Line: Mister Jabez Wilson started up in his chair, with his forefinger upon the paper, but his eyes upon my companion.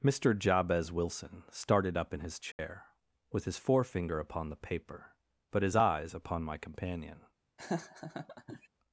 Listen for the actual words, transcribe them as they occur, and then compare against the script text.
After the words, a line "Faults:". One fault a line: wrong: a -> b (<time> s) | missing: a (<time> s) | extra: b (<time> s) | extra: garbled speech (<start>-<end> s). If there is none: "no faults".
Mister Jabez Wilson started up in his chair, with his forefinger upon the paper, but his eyes upon my companion.
Faults:
no faults